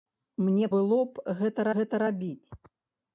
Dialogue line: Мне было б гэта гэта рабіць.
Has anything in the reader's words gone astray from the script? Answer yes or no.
no